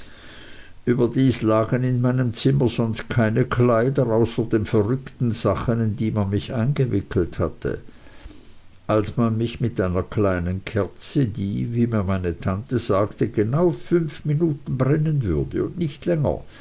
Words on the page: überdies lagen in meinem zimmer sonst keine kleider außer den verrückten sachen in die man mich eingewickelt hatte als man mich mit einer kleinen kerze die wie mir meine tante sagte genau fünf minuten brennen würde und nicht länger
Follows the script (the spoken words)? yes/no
yes